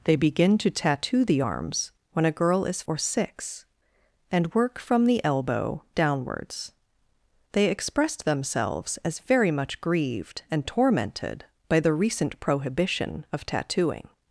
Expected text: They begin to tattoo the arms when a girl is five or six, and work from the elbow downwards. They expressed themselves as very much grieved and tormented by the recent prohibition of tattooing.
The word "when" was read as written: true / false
true